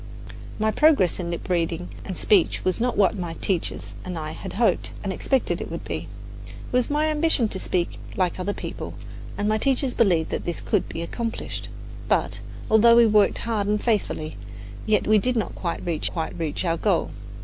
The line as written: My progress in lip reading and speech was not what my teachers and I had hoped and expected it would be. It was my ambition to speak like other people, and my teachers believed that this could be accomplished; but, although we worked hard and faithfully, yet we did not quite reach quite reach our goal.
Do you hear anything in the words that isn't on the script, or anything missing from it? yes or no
no